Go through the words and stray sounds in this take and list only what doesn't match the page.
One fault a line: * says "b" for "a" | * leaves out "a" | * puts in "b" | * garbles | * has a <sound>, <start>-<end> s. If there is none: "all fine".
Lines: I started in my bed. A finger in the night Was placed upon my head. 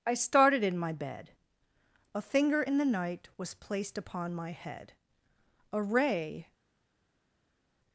* puts in "A ray"